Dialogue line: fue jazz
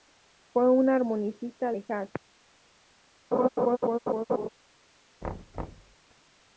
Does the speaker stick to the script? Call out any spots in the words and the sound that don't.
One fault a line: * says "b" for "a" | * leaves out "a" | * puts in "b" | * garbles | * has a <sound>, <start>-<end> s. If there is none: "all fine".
* puts in "un armonicista de"
* has a laugh, 3.3-4.5 s
* has a thud, 5.2-6.0 s